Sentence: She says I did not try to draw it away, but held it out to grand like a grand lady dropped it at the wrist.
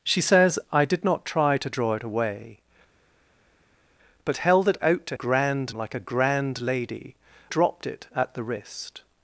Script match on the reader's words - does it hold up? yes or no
yes